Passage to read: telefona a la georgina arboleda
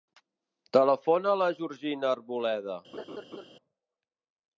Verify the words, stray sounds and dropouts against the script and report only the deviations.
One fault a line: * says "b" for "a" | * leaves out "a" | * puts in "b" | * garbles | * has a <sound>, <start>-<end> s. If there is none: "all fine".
* has a laugh, 2.9-3.5 s